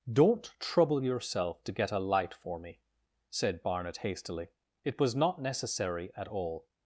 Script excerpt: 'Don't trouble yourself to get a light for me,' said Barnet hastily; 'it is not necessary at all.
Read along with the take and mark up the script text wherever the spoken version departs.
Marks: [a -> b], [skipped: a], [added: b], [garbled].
'Don't trouble yourself to get a light for me,' said Barnet hastily; 'it [is -> was] not necessary at all.